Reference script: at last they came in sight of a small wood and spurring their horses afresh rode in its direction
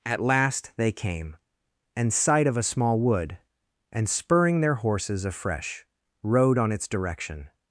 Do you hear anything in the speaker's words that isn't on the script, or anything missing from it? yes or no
yes